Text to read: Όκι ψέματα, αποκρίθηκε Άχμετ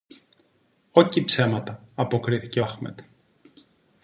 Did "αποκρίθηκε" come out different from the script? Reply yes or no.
no